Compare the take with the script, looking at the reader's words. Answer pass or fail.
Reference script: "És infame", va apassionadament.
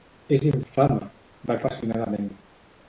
pass